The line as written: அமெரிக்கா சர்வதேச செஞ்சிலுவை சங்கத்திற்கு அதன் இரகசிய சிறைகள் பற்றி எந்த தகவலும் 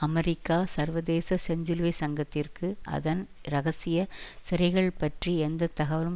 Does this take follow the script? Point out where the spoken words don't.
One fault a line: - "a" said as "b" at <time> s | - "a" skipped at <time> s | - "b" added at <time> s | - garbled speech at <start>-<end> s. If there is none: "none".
none